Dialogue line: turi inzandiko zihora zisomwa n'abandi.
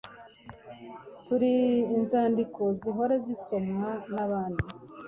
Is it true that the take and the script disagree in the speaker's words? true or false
false